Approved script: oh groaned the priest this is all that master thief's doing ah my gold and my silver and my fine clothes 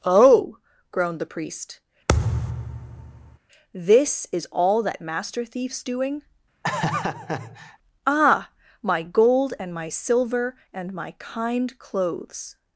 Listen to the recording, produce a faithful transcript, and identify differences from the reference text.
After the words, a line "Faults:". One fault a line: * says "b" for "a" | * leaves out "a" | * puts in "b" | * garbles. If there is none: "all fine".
oh groaned the priest this is all that master thief's doing ah my gold and my silver and my kind clothes
Faults:
* says "kind" for "fine"